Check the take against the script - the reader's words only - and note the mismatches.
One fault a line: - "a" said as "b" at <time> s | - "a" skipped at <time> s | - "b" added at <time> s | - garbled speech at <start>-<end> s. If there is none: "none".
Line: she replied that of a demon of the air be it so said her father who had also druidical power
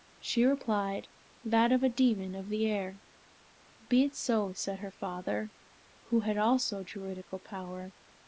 none